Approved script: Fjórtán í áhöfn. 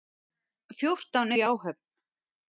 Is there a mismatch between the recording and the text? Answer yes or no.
no